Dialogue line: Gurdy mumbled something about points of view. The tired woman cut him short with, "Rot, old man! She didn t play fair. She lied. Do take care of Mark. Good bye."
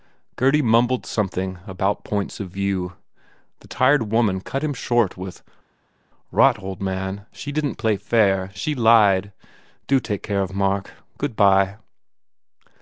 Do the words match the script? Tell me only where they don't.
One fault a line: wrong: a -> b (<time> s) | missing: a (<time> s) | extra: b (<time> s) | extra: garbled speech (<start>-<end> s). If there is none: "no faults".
no faults